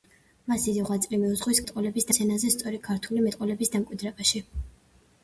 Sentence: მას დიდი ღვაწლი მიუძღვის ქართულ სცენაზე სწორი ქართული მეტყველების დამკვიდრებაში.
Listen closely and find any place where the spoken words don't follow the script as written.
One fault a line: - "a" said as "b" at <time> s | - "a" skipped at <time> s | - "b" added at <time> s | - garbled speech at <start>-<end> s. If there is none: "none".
- "ქართულ" said as "მეტყველების" at 1.6 s